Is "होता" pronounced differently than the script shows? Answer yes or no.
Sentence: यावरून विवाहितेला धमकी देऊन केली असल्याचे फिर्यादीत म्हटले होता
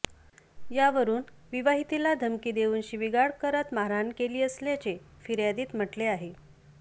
yes